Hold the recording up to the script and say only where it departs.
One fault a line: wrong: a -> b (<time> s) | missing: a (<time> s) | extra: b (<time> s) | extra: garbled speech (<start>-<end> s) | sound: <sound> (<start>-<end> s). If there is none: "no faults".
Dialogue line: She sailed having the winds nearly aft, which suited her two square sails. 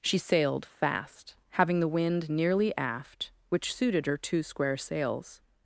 extra: fast (0.7 s)
wrong: winds -> wind (1.9 s)